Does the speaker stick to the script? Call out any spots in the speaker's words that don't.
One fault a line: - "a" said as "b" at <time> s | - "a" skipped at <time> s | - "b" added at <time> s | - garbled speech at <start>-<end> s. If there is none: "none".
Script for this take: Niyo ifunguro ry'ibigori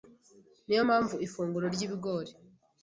- "mpamvu" added at 0.9 s